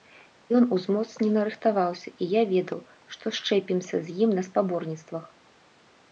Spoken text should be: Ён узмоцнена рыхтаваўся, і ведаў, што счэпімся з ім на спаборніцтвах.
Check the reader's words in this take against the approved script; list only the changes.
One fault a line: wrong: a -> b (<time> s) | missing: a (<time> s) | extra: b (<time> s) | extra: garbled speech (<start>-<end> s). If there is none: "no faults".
extra: я (2.3 s)